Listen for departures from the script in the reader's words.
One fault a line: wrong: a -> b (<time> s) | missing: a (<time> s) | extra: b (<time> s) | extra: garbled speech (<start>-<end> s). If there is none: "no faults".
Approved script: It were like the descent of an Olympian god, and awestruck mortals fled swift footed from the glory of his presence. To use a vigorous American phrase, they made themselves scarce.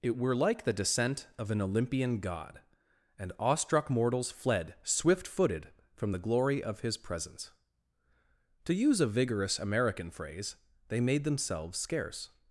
no faults